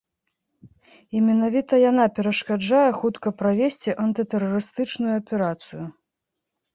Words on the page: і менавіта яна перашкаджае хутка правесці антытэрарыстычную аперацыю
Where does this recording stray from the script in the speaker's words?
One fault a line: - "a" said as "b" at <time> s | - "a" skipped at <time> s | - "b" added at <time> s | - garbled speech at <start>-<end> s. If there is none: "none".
none